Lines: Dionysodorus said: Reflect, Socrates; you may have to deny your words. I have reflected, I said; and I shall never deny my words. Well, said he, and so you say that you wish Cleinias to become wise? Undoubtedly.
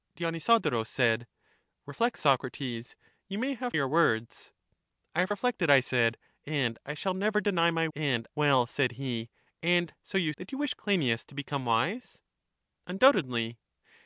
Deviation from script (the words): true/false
true